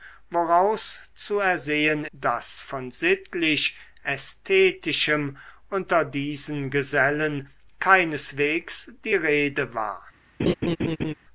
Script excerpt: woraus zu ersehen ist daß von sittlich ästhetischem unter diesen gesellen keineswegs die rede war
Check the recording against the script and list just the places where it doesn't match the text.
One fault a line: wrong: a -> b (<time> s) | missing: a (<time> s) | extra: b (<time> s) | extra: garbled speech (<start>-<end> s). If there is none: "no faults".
missing: ist (2.0 s)